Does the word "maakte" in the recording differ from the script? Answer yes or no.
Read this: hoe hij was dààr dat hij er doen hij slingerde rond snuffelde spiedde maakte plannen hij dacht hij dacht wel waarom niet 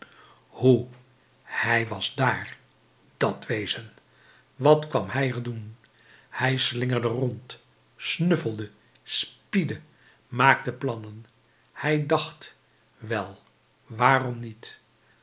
no